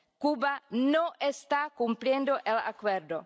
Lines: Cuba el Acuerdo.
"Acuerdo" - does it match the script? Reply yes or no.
yes